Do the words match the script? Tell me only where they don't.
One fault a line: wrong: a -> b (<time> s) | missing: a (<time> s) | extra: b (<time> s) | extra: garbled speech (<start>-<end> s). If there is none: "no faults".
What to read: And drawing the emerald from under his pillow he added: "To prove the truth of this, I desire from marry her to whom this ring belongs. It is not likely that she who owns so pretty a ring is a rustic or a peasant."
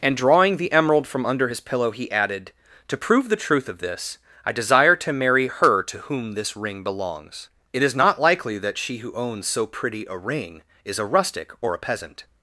wrong: from -> to (5.0 s)